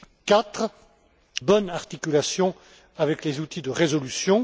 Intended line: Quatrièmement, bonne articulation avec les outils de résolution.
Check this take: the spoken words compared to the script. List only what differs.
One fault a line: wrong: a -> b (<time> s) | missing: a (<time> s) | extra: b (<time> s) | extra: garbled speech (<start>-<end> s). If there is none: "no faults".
no faults